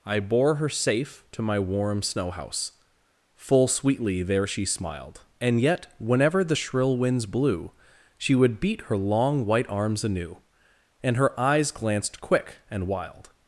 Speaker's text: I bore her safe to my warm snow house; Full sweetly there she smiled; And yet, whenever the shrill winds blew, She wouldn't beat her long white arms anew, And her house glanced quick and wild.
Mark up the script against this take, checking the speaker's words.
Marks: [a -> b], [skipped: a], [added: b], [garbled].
I bore her safe to my warm snow house; Full sweetly there she smiled; And yet, whenever the shrill winds blew, She [wouldn't -> would] beat her long white arms anew, And her [house -> eyes] glanced quick and wild.